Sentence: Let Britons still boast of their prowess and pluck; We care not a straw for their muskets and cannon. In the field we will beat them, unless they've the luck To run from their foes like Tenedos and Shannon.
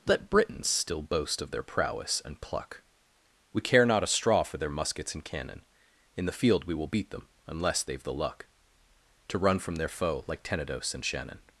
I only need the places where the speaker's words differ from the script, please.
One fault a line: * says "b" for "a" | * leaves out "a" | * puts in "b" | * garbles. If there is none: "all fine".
* says "foe" for "foes"